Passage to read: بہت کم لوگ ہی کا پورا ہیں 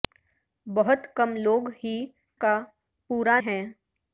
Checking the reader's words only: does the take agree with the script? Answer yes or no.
yes